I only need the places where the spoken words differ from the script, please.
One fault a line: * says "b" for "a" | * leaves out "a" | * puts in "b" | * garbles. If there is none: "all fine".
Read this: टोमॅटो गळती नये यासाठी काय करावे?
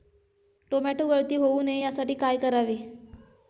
* puts in "होऊ"